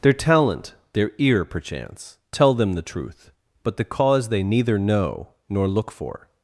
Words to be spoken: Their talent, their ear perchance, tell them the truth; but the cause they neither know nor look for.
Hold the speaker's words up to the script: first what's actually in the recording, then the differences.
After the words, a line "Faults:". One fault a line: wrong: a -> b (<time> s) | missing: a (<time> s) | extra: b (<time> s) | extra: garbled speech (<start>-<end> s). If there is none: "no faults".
Their talent, their ear perchance, tell them the truth; but the cause they neither know nor look for.
Faults:
no faults